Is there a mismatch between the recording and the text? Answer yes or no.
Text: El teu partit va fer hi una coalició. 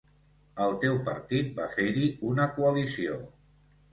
no